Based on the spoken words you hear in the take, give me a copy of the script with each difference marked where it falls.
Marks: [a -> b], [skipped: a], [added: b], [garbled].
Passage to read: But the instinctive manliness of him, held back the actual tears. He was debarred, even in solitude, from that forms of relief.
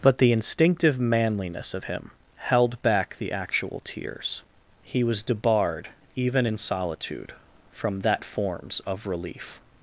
But the instinctive manliness of him, held back the actual tears. He was debarred, even in solitude, from that forms of relief.